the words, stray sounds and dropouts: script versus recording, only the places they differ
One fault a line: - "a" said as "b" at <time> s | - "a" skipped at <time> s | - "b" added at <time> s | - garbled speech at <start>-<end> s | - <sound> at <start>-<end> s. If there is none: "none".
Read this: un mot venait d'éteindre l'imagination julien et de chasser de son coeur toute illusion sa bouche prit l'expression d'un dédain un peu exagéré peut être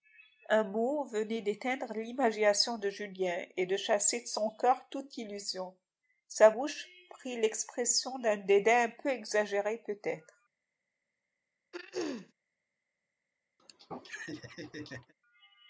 - "de" added at 2.8 s
- throat clearing at 11.7-12.3 s
- laugh at 13.6-15.1 s